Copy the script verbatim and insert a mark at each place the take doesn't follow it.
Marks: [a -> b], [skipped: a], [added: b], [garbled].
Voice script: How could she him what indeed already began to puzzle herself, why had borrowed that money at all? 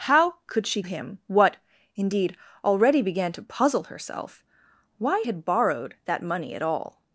How could she him what indeed already began to puzzle herself, why had borrowed that money at all?